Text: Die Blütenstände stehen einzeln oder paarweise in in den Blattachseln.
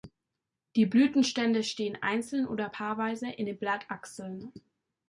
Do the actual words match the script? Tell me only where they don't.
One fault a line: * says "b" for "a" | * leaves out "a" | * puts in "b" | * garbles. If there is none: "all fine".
* leaves out "in"